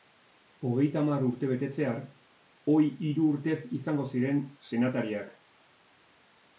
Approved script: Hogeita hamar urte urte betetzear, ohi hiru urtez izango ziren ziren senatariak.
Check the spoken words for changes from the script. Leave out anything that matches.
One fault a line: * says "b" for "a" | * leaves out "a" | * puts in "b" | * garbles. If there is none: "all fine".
* leaves out "urte"
* leaves out "ziren"